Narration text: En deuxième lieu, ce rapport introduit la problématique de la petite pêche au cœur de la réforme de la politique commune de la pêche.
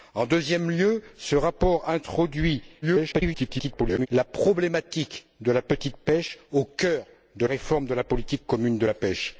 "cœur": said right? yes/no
yes